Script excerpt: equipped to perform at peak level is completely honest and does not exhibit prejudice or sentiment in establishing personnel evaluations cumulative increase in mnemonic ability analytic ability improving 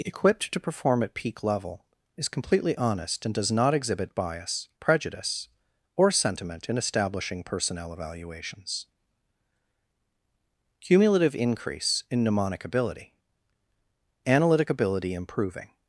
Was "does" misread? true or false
false